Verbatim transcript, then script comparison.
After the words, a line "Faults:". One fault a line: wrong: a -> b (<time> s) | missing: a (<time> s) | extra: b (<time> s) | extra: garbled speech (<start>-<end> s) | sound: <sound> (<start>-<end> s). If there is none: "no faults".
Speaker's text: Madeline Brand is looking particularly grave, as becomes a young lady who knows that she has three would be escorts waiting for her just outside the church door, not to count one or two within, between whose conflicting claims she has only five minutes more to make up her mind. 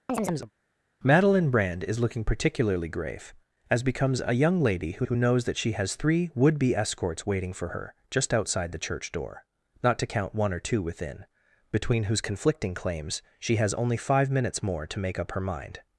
Madeline Brand is looking particularly grave, as becomes a young lady who who knows that she has three would be escorts waiting for her just outside the church door, not to count one or two within, between whose conflicting claims she has only five minutes more to make up her mind.
Faults:
sound: chirp (0.1-0.5 s)
extra: who (5.0 s)